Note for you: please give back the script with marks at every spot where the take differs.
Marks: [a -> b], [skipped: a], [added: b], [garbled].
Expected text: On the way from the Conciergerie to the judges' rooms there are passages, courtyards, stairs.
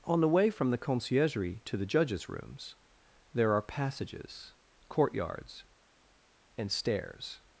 On the way from the Conciergerie to the judges' rooms there are passages, courtyards, [added: and] stairs.